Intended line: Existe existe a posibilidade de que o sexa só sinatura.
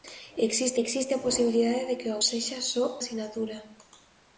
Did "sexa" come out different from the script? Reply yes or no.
no